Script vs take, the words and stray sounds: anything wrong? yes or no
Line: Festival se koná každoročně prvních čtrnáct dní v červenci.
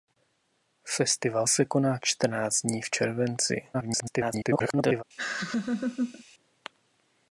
yes